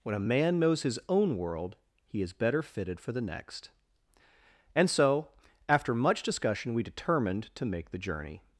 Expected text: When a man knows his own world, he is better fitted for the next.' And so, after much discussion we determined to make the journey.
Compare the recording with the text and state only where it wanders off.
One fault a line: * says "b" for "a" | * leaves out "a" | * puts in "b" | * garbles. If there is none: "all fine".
all fine